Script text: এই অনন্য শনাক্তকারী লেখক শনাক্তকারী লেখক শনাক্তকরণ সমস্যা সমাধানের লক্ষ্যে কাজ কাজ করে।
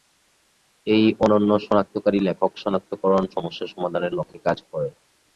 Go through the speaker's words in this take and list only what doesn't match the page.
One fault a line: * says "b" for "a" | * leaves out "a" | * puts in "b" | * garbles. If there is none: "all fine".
* leaves out "শনাক্তকারী লেখক"
* leaves out "কাজ"